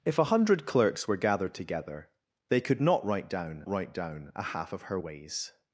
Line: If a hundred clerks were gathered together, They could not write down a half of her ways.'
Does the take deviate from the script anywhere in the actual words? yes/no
yes